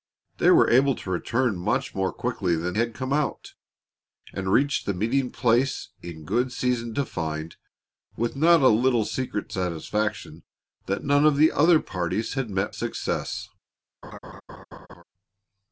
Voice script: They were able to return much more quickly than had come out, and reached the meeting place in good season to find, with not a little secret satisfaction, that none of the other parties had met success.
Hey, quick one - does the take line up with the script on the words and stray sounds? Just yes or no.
no